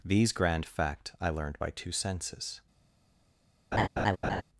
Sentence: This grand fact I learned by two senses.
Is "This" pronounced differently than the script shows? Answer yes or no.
yes